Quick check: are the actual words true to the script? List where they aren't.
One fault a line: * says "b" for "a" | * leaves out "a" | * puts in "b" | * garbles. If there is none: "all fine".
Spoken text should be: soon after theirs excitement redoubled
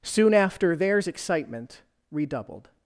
all fine